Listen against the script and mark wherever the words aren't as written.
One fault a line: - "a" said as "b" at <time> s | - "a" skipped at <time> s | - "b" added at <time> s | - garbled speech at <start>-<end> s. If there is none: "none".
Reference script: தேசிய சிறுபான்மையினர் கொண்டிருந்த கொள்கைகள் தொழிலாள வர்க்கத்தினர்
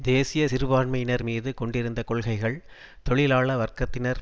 - "மீது" added at 1.2 s